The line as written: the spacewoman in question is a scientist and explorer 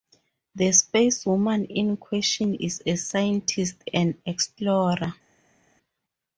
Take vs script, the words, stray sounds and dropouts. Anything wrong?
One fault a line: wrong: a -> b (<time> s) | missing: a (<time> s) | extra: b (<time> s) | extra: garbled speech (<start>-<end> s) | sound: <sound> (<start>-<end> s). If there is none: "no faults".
no faults